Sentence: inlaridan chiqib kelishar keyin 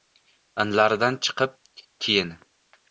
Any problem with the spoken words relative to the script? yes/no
yes